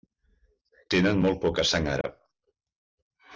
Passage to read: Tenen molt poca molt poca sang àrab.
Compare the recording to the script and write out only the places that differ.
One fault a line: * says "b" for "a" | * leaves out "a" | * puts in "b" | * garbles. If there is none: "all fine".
* leaves out "molt poca"